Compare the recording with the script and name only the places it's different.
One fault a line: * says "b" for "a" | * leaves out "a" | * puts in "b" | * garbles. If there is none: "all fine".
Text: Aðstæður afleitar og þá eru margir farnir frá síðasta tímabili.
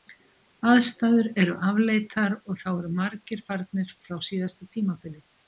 * puts in "eru"